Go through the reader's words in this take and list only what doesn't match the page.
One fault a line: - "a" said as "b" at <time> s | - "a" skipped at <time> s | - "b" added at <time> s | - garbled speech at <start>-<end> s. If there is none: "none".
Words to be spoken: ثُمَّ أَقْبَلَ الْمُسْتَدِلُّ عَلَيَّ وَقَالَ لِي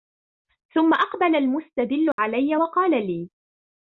none